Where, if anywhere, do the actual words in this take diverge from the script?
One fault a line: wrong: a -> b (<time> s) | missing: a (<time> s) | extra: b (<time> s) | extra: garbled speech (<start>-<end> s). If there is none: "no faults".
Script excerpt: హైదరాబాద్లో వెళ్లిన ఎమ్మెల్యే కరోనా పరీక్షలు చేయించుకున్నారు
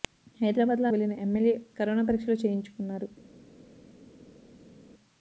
no faults